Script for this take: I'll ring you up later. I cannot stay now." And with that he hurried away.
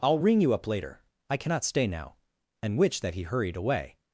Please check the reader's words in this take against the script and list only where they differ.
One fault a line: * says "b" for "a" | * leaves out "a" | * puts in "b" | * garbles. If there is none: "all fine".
* says "which" for "with"